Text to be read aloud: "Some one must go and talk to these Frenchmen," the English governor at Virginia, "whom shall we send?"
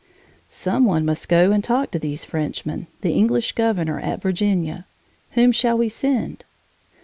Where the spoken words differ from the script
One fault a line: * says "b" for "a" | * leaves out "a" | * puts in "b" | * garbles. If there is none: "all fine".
all fine